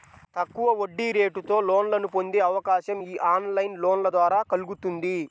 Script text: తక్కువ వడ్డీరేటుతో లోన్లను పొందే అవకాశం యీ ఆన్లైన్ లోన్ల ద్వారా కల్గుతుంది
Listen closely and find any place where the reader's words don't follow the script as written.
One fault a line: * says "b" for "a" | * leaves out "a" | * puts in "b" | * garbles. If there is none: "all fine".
all fine